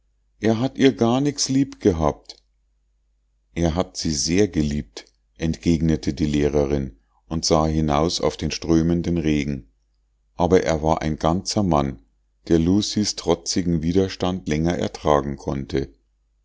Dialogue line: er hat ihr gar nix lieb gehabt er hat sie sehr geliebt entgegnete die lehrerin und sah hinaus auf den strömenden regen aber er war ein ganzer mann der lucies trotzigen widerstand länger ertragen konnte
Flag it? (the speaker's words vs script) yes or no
no